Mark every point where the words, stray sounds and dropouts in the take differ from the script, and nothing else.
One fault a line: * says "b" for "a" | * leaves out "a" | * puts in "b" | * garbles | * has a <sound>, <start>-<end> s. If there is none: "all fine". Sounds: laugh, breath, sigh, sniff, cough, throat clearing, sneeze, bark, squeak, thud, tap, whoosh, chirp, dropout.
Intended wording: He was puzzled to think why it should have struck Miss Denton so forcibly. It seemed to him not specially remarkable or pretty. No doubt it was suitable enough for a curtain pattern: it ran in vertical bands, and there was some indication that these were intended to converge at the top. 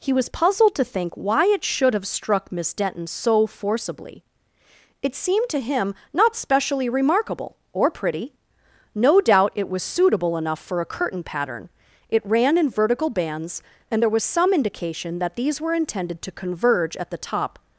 all fine